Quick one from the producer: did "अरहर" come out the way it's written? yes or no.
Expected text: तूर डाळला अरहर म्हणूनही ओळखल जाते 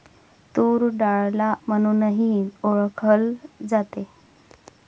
no